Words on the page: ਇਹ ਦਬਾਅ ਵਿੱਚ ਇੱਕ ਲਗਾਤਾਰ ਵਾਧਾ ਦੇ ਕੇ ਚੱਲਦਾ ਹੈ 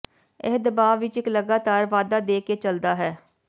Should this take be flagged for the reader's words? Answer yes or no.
no